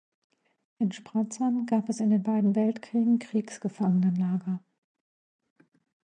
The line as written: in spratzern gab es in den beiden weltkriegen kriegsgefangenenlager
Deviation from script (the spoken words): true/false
false